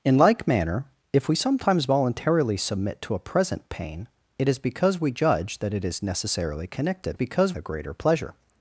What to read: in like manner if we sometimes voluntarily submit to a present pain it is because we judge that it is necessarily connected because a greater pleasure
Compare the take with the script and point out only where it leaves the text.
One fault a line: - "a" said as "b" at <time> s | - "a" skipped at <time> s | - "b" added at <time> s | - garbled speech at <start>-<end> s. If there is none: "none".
none